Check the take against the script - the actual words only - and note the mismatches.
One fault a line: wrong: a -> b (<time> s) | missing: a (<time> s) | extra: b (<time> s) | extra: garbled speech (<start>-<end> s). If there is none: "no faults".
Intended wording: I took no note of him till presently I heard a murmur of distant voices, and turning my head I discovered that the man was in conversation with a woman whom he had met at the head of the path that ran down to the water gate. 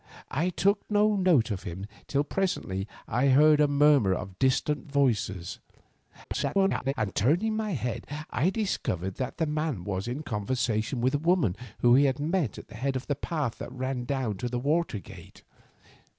extra: garbled speech (6.2-6.9 s)